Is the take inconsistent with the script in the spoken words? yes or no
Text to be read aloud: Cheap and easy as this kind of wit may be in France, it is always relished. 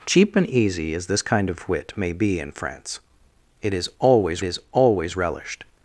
yes